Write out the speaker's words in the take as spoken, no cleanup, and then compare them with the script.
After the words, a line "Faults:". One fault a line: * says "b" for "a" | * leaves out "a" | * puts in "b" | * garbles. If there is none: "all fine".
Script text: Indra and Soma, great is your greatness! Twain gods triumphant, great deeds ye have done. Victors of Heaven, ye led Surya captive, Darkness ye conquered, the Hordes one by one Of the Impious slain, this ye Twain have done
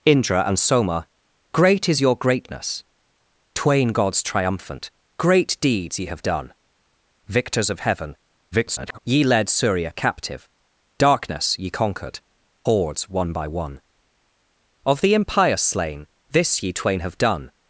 Indra and Soma, great is your greatness! Twain gods triumphant, great deeds ye have done. Victors of Heaven, [garbled] ye led Surya captive, Darkness ye conquered, Hordes one by one Of the Impious slain, this ye Twain have done
Faults:
* garbles
* leaves out "the"